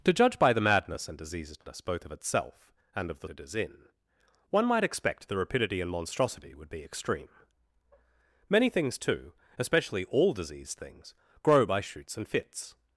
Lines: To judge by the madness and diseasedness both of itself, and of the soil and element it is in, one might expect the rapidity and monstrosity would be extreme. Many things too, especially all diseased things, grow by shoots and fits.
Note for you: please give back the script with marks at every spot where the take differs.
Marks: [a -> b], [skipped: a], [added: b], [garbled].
To judge by the madness and diseasedness both of itself, and of the [skipped: soil and element] it is in, one might expect the rapidity and monstrosity would be extreme. Many things too, especially all diseased things, grow by shoots and fits.